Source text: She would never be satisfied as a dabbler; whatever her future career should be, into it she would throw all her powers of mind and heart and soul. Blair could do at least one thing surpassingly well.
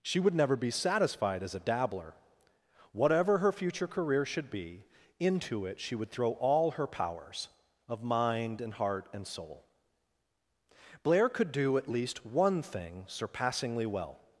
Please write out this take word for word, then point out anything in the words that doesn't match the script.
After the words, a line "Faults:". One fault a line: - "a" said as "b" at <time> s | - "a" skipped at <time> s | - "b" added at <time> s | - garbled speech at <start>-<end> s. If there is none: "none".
She would never be satisfied as a dabbler; whatever her future career should be, into it she would throw all her powers of mind and heart and soul. Blair could do at least one thing surpassingly well.
Faults:
none